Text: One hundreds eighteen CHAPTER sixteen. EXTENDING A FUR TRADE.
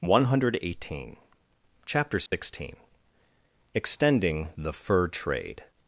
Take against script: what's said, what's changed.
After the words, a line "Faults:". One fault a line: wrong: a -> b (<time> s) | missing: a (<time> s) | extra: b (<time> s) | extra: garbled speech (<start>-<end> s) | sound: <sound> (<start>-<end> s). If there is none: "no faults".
One hundred eighteen CHAPTER sixteen. EXTENDING THE FUR TRADE.
Faults:
wrong: hundreds -> hundred (0.2 s)
sound: dropout (2.3-2.3 s)
wrong: A -> THE (4.6 s)